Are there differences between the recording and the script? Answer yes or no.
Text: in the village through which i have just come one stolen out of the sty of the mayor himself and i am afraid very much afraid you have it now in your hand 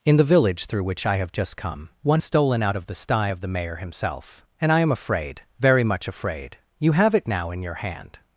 no